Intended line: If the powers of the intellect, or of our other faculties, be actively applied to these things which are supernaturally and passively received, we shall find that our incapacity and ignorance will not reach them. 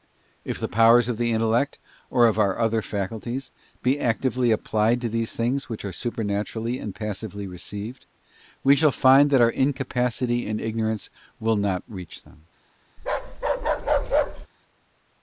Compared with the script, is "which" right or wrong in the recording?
right